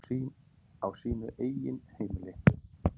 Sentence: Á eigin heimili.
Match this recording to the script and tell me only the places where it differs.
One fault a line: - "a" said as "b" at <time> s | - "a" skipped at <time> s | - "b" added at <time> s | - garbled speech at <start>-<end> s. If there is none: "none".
- "sínu" added at 1.0 s